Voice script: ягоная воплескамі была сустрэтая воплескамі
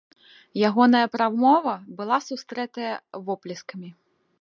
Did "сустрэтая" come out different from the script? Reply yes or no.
no